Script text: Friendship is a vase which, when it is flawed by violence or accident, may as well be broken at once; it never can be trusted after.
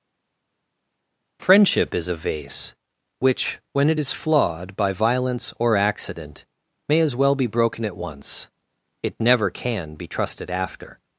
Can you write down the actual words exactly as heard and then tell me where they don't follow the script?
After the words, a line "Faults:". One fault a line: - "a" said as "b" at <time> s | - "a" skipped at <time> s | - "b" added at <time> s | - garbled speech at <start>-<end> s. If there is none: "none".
Friendship is a vase which, when it is flawed by violence or accident, may as well be broken at once; it never can be trusted after.
Faults:
none